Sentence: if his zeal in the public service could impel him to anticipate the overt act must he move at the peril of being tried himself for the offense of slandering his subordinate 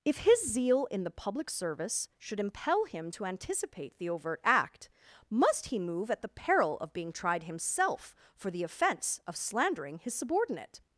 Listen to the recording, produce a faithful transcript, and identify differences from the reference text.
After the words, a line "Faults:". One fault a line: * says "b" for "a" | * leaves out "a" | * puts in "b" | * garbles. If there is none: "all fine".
if his zeal in the public service should impel him to anticipate the overt act must he move at the peril of being tried himself for the offense of slandering his subordinate
Faults:
* says "should" for "could"